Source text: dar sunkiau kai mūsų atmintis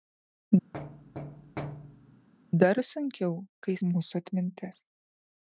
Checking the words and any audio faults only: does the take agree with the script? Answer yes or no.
no